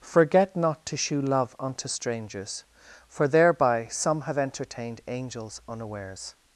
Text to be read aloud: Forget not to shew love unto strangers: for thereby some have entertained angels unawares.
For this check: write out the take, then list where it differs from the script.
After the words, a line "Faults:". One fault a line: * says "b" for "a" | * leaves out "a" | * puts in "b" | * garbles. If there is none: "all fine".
Forget not to shew love unto strangers: for thereby some have entertained angels unawares.
Faults:
all fine